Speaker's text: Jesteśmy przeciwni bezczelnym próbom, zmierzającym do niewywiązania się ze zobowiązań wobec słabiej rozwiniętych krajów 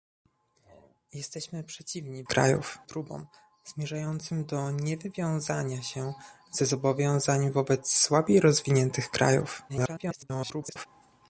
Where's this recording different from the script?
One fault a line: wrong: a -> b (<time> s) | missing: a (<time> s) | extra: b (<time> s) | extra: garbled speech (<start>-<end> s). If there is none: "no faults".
wrong: bezczelnym -> krajów (2.3 s)
extra: garbled speech (9.7-10.9 s)